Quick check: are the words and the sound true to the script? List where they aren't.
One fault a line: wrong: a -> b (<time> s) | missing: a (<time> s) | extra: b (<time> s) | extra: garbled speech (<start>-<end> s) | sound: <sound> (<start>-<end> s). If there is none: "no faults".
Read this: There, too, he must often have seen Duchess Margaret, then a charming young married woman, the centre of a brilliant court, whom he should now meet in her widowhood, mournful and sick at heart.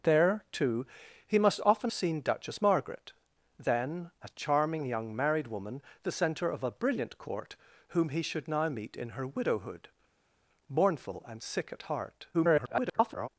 missing: have (1.9 s)
extra: garbled speech (12.3-13.3 s)